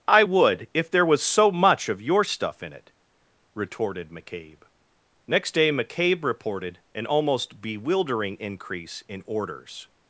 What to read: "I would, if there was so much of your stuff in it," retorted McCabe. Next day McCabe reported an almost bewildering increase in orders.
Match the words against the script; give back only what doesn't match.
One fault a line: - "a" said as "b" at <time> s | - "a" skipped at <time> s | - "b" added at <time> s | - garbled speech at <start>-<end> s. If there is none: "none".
none